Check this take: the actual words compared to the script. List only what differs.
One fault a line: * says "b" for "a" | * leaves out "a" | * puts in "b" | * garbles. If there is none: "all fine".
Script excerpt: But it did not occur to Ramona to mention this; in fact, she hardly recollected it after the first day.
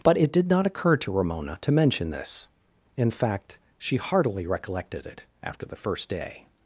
* says "heartily" for "hardly"